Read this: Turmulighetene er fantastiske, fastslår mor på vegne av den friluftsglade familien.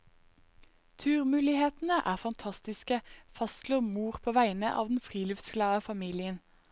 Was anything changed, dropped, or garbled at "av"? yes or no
no